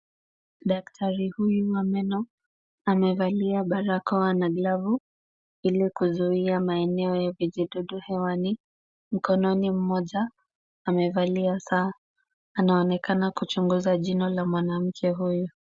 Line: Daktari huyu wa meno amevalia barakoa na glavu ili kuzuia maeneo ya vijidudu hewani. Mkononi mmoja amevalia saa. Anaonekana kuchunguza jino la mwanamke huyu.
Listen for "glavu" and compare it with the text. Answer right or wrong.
right